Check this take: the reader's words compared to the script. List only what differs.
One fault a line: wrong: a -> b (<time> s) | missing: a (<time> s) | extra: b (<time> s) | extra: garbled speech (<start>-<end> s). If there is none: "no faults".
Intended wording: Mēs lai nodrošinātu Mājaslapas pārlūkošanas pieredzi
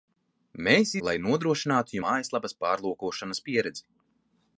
no faults